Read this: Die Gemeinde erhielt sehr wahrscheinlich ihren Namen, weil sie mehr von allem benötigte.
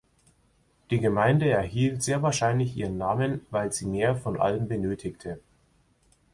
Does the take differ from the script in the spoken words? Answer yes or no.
no